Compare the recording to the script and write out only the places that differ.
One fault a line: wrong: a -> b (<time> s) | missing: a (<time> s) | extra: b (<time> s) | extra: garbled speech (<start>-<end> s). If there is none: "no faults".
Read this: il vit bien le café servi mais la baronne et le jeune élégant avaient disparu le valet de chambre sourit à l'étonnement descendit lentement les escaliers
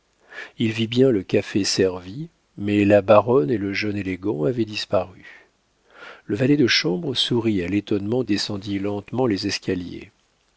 no faults